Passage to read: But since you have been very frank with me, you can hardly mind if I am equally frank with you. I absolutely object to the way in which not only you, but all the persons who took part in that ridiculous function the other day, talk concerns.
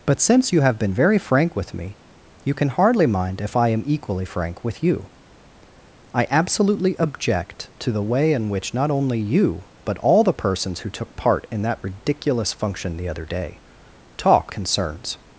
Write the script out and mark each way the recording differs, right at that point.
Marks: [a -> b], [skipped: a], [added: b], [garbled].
But since you have been very frank with me, you can hardly mind if I am equally frank with you. I absolutely object to the way in which not only you, but all the persons who took part in that ridiculous function the other day, talk concerns.